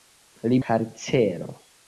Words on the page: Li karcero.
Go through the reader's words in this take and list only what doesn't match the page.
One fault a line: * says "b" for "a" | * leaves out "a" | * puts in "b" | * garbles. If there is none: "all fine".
all fine